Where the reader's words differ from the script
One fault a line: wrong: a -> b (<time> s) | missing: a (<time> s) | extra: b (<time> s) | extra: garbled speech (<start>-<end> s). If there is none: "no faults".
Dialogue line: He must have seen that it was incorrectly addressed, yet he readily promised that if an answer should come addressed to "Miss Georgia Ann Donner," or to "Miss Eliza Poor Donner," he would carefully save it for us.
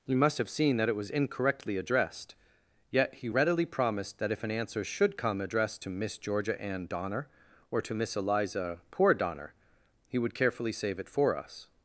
no faults